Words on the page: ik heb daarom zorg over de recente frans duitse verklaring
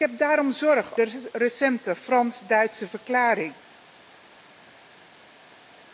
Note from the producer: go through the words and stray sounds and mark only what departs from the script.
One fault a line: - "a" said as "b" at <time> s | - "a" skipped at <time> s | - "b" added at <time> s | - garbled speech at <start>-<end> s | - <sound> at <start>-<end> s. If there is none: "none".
- "over" skipped at 1.0 s